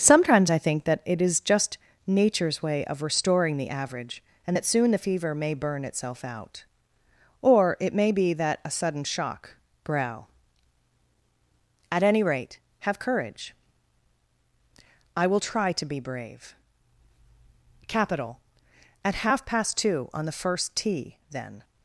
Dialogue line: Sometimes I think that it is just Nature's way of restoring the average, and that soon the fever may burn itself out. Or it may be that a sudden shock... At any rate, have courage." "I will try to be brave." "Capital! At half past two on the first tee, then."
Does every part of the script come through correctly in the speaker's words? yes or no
no